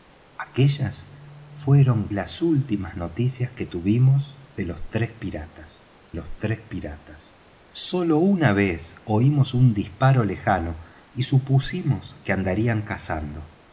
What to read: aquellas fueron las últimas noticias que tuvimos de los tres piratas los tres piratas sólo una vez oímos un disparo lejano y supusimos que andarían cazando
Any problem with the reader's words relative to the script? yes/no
no